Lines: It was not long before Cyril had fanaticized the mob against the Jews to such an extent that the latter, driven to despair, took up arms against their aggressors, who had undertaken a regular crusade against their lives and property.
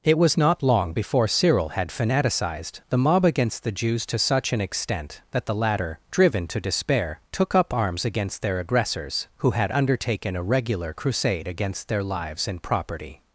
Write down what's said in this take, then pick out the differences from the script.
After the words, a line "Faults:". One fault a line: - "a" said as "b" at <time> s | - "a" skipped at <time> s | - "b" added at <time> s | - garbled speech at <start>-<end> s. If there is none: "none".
It was not long before Cyril had fanaticized the mob against the Jews to such an extent that the latter, driven to despair, took up arms against their aggressors, who had undertaken a regular crusade against their lives and property.
Faults:
none